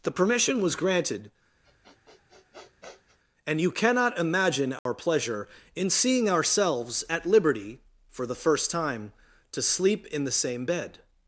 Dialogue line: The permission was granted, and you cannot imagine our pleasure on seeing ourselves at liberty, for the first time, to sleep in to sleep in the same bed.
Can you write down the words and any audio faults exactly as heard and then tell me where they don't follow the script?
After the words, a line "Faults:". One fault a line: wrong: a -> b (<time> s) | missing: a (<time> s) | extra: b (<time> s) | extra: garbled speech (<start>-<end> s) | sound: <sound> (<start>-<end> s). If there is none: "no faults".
The permission was granted, and you cannot imagine our pleasure in seeing ourselves at liberty, for the first time, to sleep in the same bed.
Faults:
sound: sniff (1.6-3.2 s)
sound: dropout (4.8-4.9 s)
wrong: on -> in (5.7 s)
missing: to sleep in (10.2 s)